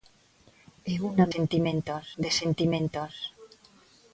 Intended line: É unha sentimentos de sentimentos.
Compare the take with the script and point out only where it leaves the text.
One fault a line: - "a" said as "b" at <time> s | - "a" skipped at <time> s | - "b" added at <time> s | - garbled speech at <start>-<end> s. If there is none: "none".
none